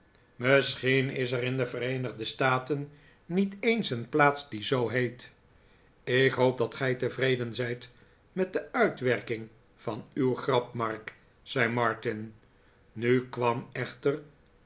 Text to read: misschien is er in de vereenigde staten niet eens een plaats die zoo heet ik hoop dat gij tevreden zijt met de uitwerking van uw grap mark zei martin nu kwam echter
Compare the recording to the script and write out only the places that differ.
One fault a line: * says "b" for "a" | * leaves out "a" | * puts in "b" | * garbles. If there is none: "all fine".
all fine